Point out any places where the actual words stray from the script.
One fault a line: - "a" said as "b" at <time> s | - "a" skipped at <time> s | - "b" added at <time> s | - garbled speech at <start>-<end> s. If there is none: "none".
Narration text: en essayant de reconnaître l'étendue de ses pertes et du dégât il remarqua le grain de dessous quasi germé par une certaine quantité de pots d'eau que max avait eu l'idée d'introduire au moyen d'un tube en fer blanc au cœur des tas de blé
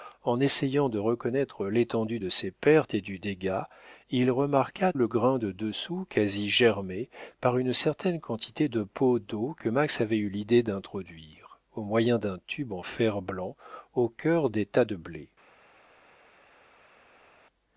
none